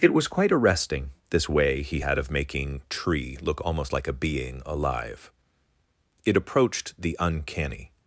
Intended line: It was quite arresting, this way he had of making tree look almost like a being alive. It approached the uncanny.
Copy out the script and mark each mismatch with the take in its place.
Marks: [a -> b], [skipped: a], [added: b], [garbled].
It was quite arresting, this way he had of making tree look almost like a being alive. It approached the uncanny.